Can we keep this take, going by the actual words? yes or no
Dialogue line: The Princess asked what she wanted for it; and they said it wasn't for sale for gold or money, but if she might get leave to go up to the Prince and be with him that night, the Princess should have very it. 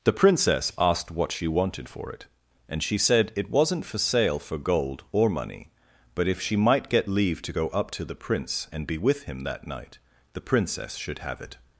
no